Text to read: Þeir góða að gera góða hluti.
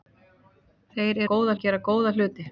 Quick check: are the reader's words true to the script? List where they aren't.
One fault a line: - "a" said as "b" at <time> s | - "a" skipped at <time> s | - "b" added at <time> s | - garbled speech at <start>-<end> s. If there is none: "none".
none